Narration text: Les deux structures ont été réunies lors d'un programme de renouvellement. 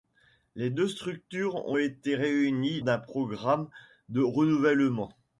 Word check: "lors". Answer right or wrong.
wrong